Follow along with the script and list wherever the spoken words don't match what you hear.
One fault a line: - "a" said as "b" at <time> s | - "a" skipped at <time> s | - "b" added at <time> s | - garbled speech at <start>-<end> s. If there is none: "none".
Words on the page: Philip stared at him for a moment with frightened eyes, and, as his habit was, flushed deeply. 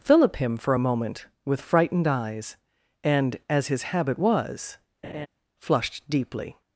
- "stared at" skipped at 0.4 s